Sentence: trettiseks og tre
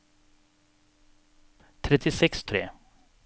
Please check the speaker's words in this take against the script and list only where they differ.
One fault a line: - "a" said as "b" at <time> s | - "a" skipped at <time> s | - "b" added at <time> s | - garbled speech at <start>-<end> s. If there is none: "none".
none